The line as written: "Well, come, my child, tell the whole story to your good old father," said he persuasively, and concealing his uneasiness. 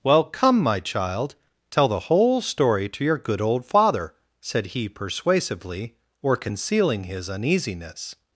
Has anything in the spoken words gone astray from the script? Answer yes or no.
yes